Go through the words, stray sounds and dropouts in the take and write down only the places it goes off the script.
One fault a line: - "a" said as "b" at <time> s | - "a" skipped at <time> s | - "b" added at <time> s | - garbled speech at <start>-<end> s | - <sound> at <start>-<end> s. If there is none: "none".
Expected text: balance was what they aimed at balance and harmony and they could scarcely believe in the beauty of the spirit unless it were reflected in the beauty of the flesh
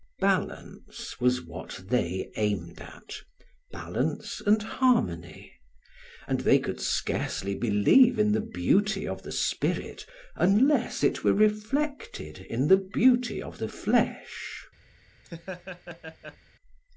- laugh at 15.2-16.4 s